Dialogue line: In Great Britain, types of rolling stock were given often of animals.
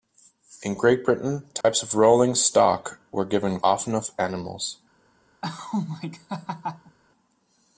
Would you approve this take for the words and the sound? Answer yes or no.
no